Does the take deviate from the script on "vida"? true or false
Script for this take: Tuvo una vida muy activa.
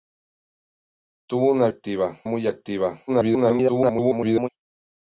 true